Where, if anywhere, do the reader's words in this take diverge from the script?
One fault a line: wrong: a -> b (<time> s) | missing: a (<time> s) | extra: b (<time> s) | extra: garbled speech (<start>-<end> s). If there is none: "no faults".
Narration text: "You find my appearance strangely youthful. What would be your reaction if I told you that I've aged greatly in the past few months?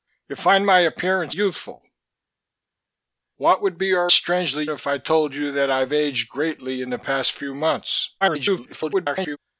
missing: strangely (1.4 s)
wrong: reaction -> strangely (4.1 s)
extra: garbled speech (8.2-9.4 s)